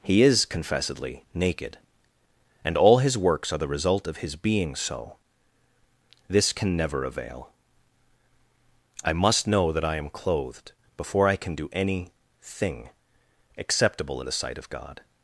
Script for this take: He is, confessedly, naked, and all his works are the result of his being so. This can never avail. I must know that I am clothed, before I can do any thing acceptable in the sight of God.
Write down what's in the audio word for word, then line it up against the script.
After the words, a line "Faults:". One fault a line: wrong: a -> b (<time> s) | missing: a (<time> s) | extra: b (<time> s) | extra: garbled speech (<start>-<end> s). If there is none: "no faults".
He is, confessedly, naked, and all his works are the result of his being so. This can never avail. I must know that I am clothed, before I can do any thing acceptable in the sight of God.
Faults:
no faults